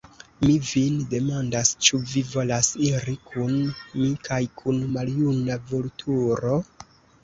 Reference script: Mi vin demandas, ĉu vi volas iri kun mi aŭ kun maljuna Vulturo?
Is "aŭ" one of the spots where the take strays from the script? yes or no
yes